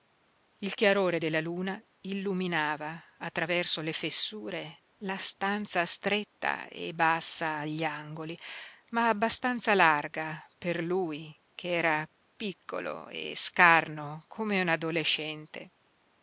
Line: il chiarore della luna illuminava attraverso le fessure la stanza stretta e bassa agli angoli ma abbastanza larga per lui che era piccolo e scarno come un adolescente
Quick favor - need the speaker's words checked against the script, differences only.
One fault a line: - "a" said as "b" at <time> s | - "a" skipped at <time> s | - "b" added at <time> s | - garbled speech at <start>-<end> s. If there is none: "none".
none